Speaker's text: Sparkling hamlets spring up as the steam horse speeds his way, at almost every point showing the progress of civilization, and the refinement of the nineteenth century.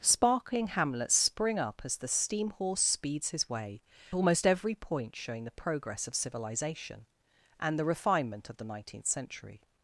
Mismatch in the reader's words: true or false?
true